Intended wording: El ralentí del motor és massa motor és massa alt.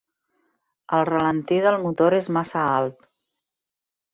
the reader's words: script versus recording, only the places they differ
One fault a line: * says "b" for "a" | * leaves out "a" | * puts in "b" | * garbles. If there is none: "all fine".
* leaves out "motor és massa"